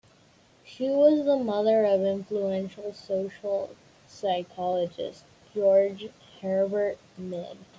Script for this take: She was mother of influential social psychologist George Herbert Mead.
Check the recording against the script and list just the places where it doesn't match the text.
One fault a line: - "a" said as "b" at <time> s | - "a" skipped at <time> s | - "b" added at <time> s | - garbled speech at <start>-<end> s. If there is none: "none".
- "the" added at 1.2 s